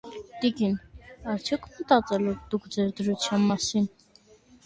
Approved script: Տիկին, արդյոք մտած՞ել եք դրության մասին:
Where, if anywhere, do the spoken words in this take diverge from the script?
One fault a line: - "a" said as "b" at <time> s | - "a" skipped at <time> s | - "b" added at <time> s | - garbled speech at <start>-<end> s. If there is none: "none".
- "դուք ձեր" added at 2.5 s